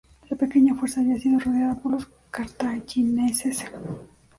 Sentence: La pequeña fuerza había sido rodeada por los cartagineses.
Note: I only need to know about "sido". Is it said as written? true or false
true